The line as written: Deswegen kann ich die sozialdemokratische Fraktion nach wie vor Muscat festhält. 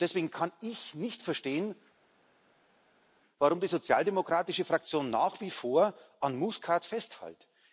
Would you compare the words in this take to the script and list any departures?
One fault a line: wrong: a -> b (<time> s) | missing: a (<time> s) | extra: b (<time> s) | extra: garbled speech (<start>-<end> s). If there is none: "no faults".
extra: nicht verstehen warum (0.9 s)
extra: an (6.2 s)